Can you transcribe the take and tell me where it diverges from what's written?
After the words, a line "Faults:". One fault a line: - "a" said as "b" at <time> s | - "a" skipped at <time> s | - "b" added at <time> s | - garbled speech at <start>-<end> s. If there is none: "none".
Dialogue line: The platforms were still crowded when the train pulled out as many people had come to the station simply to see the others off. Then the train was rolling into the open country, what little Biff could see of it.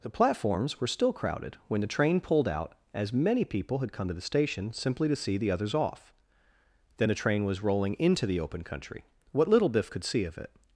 The platforms were still crowded when the train pulled out as many people had come to the station simply to see the others off. Then the train was rolling into the open country, what little Biff could see of it.
Faults:
none